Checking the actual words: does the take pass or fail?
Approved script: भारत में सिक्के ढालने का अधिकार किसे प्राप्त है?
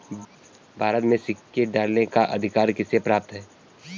pass